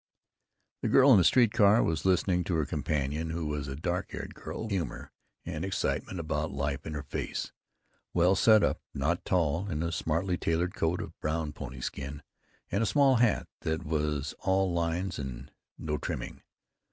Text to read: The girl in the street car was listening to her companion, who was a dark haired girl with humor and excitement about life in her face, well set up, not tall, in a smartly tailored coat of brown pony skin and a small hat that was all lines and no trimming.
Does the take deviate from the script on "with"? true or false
true